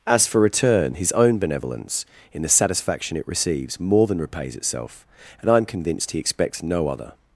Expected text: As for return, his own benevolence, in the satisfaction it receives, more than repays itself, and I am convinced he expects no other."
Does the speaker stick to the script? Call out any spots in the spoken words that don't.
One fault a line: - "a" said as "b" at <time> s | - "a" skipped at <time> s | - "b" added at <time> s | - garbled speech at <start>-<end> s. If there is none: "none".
none